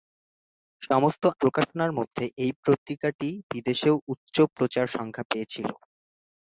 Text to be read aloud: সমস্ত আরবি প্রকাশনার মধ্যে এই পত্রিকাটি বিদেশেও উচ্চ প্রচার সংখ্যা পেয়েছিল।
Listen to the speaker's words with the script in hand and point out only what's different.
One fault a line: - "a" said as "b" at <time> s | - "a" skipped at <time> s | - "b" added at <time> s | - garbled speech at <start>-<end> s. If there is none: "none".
- "আরবি" skipped at 1.2 s